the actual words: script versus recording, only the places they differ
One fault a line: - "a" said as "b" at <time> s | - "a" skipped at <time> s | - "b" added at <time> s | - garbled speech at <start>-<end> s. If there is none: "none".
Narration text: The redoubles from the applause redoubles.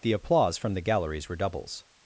- "redoubles" said as "applause" at 0.1 s
- "applause" said as "galleries" at 0.8 s